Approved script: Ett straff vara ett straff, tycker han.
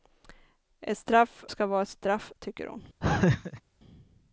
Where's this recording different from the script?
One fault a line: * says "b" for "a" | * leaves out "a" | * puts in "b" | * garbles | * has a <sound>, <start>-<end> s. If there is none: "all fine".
* puts in "ska"
* says "hon" for "han"
* has a laugh, 3.0-3.6 s